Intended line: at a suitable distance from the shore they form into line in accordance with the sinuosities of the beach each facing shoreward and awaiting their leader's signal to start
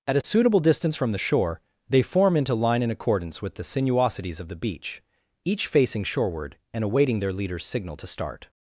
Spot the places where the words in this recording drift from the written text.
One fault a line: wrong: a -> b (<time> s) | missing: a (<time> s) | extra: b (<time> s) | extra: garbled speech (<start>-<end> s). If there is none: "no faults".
no faults